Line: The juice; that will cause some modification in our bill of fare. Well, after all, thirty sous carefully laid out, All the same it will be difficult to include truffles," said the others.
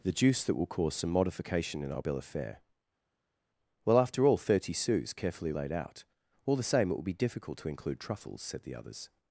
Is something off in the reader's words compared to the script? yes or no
no